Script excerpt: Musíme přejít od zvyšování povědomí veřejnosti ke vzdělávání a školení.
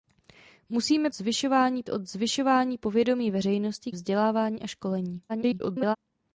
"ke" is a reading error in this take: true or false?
true